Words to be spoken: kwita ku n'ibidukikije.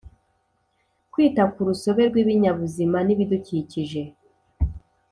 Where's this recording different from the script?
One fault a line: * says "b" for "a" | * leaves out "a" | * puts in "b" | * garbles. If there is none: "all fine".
* puts in "rusobe rw'ibinyabuzima"